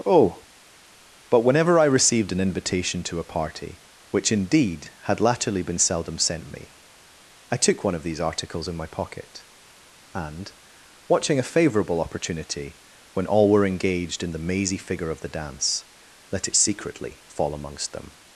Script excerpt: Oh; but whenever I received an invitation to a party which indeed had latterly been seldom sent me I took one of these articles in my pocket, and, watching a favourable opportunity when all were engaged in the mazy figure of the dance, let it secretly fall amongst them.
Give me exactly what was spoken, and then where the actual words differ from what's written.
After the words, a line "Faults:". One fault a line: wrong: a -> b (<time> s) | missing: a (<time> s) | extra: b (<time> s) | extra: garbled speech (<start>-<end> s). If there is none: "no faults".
Oh; but whenever I received an invitation to a party which indeed had latterly been seldom sent me I took one of these articles in my pocket, and, watching a favourable opportunity when all were engaged in the mazy figure of the dance, let it secretly fall amongst them.
Faults:
no faults